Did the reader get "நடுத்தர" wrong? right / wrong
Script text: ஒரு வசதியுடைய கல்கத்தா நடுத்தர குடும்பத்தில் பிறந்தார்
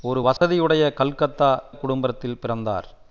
wrong